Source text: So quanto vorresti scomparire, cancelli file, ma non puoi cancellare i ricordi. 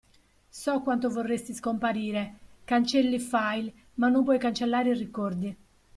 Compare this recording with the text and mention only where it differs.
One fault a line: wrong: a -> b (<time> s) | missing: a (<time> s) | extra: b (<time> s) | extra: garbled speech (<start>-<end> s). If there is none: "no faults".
no faults